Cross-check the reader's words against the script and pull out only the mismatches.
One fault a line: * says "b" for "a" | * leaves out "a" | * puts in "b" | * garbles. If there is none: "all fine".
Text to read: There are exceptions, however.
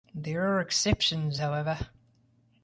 all fine